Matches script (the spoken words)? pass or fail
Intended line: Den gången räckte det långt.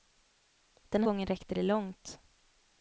pass